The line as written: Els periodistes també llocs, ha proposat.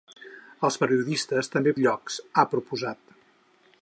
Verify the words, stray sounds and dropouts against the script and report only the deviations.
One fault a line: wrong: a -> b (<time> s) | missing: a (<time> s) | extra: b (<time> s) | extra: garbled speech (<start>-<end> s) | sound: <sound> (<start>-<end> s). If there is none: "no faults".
no faults